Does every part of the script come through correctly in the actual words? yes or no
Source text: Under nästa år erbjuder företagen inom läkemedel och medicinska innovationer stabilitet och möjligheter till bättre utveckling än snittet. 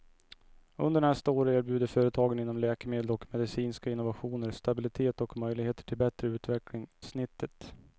no